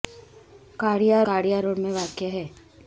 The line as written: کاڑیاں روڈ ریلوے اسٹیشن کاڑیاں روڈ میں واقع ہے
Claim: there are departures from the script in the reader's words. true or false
true